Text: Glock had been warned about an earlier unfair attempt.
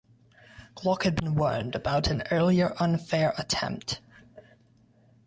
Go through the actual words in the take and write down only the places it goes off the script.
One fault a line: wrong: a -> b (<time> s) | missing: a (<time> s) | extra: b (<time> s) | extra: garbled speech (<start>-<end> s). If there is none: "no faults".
no faults